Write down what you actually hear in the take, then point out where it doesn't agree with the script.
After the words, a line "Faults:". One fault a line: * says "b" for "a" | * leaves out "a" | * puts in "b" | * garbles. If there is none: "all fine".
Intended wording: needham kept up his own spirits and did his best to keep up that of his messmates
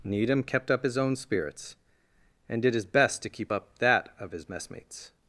needham kept up his own spirits and did his best to keep up that of his messmates
Faults:
all fine